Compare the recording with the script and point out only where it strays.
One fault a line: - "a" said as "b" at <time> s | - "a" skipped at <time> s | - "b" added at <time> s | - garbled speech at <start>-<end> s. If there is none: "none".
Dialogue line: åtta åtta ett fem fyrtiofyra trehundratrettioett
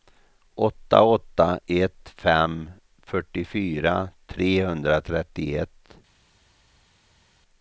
none